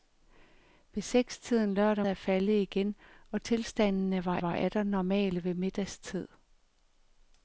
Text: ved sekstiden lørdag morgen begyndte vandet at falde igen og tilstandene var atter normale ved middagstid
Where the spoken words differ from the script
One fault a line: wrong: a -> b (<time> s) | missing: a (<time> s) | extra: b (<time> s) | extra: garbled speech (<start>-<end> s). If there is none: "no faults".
missing: morgen begyndte vandet (2.1 s)
extra: var (4.4 s)